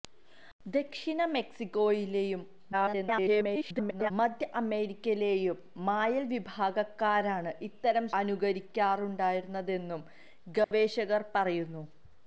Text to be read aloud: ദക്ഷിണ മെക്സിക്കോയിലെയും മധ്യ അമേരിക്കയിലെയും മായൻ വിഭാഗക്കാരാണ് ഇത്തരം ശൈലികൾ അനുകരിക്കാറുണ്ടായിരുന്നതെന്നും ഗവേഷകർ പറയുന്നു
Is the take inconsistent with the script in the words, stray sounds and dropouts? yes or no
yes